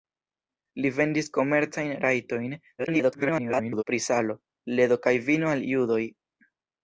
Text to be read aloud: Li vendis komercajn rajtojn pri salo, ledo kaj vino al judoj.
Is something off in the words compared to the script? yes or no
yes